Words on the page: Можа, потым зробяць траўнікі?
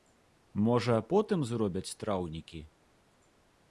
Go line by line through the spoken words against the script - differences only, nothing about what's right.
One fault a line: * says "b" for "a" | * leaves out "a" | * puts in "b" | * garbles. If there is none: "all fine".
all fine